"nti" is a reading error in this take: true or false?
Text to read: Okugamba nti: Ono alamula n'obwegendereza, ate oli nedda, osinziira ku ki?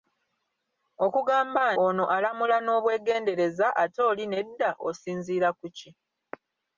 true